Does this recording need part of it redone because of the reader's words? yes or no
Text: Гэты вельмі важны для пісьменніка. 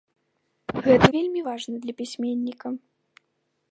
no